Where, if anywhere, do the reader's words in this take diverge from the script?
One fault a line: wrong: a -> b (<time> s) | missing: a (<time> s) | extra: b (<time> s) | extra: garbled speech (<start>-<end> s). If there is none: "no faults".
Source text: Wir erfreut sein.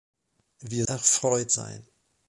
no faults